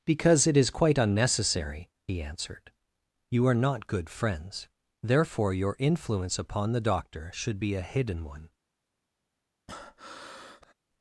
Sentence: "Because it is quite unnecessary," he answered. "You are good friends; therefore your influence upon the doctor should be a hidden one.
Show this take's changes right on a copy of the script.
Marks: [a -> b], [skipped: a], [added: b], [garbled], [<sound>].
"Because it is quite unnecessary," he answered. "You are [added: not] good friends; therefore your influence upon the doctor should be a hidden one. [breath]